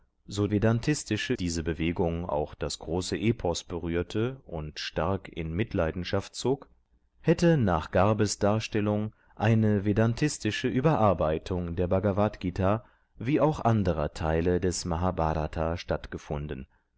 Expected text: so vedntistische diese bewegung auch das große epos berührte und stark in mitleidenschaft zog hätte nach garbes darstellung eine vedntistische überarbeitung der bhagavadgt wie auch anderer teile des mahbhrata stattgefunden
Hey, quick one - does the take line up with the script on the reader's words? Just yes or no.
yes